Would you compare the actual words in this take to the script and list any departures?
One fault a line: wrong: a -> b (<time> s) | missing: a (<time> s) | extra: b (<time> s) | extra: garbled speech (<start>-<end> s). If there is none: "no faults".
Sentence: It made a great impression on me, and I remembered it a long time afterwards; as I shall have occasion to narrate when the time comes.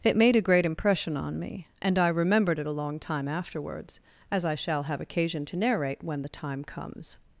no faults